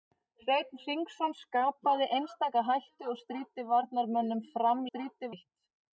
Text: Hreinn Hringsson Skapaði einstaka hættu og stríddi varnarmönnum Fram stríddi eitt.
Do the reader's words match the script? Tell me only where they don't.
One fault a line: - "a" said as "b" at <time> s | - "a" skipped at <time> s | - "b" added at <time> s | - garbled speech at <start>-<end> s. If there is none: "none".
none